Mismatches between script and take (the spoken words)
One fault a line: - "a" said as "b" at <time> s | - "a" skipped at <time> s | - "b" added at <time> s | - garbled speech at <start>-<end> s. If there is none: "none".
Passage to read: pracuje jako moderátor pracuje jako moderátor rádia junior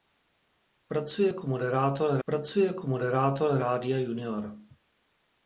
none